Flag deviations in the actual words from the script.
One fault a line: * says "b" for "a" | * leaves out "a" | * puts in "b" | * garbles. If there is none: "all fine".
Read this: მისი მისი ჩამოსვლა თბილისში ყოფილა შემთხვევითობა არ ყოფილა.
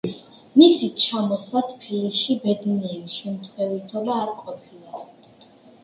* leaves out "მისი"
* says "ბედნიერი" for "ყოფილა"